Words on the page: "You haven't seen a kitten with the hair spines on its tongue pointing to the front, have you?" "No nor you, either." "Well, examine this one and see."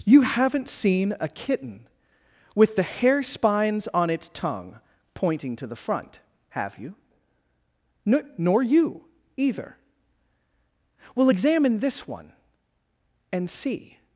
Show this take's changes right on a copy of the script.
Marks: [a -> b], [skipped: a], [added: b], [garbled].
"You haven't seen a kitten with the hair spines on its tongue pointing to the front, have you?" "No nor you, either." "Well, examine this one and see."